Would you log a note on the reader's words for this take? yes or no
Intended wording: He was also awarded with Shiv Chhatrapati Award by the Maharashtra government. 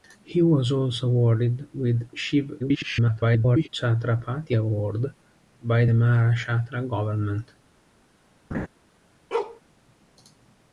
yes